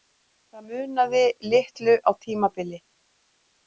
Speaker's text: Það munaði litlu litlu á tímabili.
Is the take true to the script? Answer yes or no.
no